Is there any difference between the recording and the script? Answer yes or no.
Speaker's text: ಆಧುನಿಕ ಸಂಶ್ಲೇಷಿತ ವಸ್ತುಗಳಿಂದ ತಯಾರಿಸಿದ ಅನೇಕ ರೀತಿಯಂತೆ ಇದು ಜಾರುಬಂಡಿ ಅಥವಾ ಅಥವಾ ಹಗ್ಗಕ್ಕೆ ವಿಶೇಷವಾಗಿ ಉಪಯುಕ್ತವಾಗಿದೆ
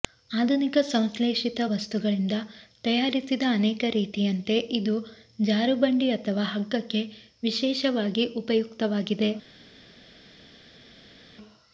yes